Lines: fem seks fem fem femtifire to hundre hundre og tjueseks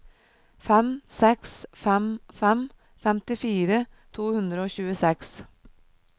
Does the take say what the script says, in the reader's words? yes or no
no